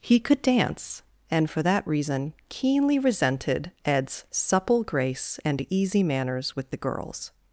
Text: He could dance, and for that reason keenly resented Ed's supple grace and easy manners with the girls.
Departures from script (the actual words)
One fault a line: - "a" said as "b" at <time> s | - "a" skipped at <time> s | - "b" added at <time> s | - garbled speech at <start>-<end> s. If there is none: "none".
none